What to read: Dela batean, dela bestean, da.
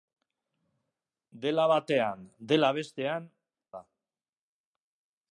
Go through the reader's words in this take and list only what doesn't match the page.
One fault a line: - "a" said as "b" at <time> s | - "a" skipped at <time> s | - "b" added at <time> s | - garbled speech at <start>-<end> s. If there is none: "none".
none